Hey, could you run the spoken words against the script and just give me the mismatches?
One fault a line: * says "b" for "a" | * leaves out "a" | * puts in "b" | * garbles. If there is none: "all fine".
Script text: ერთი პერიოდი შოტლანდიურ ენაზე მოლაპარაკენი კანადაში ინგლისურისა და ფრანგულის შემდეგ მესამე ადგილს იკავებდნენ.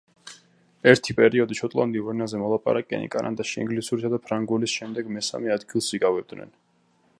all fine